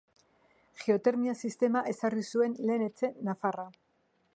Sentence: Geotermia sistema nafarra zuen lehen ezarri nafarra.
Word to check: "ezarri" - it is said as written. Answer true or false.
false